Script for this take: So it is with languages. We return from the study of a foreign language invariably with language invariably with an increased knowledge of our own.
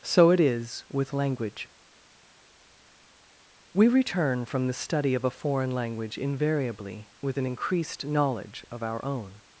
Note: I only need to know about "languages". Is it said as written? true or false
false